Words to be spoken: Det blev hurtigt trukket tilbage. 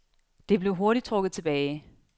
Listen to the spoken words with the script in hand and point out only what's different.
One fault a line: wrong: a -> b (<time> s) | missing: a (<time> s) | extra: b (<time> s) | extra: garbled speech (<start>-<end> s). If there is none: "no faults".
no faults